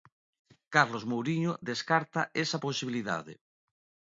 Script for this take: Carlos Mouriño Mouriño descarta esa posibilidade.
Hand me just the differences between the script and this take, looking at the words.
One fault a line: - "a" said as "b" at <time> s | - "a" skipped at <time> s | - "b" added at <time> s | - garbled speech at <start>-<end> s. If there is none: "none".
- "Mouriño" skipped at 1.5 s